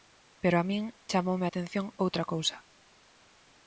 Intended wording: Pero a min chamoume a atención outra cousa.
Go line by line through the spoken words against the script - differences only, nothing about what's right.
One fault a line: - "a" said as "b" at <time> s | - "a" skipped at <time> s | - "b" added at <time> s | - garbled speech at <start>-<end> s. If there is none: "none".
none